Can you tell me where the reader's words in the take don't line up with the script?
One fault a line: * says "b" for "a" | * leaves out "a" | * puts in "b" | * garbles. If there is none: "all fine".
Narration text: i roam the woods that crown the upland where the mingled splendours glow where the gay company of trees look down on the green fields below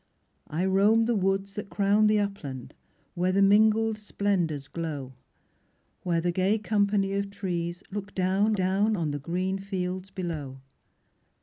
* puts in "down"